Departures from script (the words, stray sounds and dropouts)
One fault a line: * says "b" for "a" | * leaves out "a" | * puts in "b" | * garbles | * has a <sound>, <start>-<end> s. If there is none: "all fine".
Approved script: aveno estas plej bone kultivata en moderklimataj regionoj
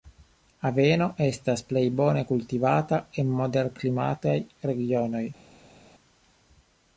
all fine